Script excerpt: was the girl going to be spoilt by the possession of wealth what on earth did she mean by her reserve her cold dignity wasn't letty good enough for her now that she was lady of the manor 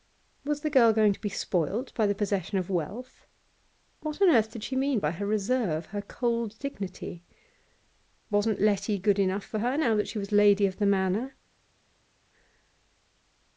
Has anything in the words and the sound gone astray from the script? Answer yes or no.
no